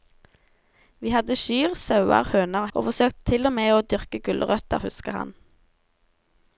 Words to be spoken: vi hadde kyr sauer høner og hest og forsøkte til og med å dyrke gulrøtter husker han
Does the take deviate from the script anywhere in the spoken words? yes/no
yes